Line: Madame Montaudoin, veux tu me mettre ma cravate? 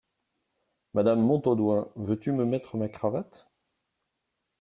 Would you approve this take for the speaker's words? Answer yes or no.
yes